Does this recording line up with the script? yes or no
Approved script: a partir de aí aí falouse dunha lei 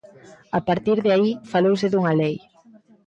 no